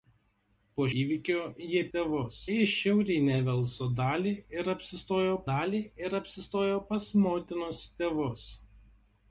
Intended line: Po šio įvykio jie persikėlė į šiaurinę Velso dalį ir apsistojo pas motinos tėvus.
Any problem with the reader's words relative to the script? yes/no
yes